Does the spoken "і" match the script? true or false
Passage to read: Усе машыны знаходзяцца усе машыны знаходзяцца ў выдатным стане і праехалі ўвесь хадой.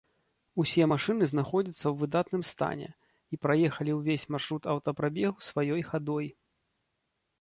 true